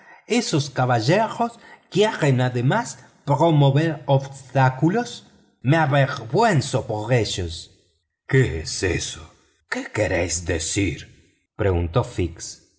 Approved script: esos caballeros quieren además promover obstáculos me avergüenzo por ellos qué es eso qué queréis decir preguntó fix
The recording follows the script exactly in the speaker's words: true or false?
true